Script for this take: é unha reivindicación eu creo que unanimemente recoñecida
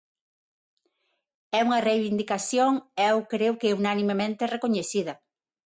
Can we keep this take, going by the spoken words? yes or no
yes